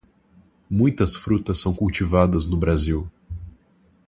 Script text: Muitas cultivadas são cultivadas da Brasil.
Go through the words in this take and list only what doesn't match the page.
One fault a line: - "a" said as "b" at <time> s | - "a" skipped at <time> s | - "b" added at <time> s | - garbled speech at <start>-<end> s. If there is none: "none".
- "cultivadas" said as "frutas" at 1.1 s
- "da" said as "no" at 2.4 s